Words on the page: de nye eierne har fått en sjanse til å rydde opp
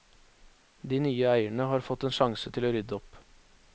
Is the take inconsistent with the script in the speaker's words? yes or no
no